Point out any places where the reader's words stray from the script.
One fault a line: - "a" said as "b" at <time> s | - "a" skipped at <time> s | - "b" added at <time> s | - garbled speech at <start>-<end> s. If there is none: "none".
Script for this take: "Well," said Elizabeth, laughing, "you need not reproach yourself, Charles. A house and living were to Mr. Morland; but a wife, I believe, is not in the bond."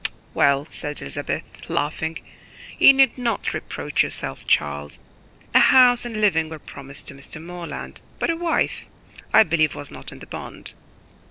- "promised" added at 6.6 s
- "is" said as "was" at 9.7 s